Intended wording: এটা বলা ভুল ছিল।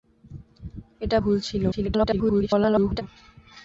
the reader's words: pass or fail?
fail